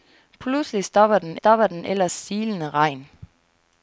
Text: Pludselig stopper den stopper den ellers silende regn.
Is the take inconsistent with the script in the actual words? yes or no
no